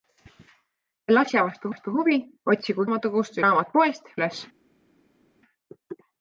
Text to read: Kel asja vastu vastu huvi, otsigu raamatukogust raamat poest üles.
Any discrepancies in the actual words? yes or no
no